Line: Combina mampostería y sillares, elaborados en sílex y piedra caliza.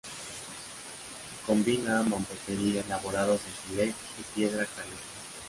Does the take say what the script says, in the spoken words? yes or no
no